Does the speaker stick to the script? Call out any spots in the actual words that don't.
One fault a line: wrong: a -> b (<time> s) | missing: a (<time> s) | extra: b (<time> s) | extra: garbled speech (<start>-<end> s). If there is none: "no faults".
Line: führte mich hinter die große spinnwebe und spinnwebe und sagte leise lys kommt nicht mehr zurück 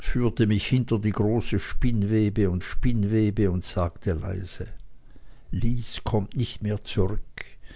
no faults